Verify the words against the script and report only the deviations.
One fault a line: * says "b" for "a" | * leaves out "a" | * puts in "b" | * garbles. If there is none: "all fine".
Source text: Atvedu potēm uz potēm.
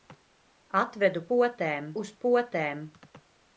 all fine